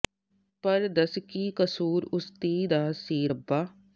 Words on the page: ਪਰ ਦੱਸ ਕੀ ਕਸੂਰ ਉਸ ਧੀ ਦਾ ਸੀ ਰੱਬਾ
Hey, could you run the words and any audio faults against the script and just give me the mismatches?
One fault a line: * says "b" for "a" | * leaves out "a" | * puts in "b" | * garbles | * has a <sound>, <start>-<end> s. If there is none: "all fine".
all fine